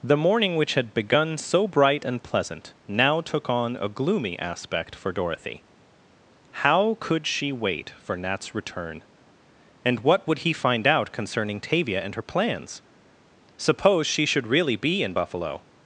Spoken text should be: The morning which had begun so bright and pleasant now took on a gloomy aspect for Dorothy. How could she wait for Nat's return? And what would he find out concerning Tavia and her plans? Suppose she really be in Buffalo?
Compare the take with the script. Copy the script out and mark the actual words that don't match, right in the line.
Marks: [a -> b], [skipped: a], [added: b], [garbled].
The morning which had begun so bright and pleasant now took on a gloomy aspect for Dorothy. How could she wait for Nat's return? And what would he find out concerning Tavia and her plans? Suppose she [added: should] really be in Buffalo?